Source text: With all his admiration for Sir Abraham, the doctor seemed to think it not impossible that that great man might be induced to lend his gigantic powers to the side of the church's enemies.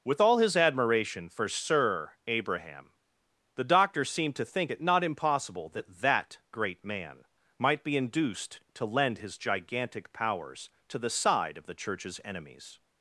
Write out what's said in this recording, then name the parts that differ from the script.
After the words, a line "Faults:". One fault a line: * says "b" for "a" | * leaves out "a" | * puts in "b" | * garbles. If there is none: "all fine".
With all his admiration for Sir Abraham, the doctor seemed to think it not impossible that that great man might be induced to lend his gigantic powers to the side of the church's enemies.
Faults:
all fine